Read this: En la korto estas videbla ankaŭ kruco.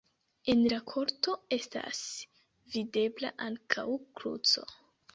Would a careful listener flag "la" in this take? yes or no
no